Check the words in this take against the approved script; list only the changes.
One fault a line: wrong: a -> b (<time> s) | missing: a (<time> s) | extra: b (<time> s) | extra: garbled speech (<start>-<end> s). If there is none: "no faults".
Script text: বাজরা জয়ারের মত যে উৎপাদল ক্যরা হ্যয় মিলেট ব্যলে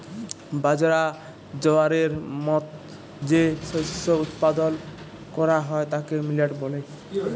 extra: শস্য (3.6 s)
extra: তাকে (5.9 s)